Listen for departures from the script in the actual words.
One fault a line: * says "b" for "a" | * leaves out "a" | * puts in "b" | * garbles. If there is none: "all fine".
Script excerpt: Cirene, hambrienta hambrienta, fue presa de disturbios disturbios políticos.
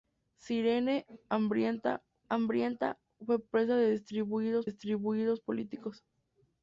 all fine